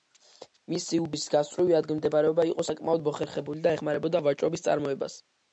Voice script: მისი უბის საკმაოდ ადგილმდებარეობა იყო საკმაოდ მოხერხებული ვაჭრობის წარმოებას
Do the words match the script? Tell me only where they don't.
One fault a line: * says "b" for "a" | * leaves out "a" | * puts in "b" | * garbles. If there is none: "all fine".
* says "გასწვრივი" for "საკმაოდ"
* puts in "და ეხმარებოდა"